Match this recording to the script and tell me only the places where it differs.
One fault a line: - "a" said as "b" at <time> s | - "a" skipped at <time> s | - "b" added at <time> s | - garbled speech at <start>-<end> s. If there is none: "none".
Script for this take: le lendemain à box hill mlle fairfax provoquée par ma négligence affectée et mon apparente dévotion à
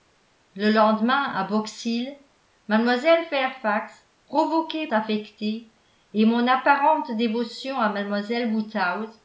- "par ma négligence" skipped at 4.9 s